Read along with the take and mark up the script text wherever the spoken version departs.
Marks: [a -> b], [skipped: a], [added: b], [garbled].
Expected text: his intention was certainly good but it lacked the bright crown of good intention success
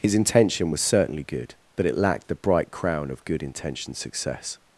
his intention was certainly good but it lacked the bright crown of good intention success